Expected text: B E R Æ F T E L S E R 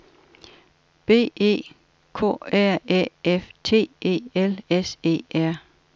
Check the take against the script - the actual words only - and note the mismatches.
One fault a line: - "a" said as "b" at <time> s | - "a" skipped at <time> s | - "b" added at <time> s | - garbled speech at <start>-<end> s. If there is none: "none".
- "K" added at 2.1 s